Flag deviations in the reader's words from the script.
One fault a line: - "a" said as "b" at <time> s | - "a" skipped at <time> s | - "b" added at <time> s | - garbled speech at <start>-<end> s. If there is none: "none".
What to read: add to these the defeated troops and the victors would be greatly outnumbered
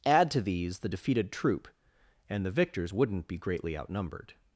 - "troops" said as "troop" at 1.3 s
- "would" said as "wouldn't" at 2.9 s